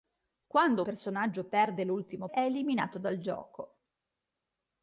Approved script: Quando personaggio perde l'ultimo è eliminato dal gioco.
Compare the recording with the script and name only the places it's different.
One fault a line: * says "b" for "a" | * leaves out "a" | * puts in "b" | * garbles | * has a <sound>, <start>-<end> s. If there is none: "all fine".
all fine